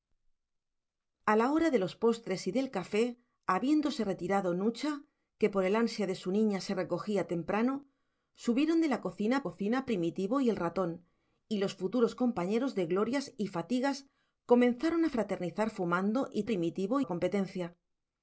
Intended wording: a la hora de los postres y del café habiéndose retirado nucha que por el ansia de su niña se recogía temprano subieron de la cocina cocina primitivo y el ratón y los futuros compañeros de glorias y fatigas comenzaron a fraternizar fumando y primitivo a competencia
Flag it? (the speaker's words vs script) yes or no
no